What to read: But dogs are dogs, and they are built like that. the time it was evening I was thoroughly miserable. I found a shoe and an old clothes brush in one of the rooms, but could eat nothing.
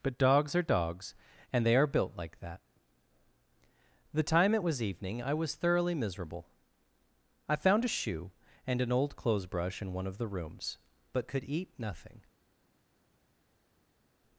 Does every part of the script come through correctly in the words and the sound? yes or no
yes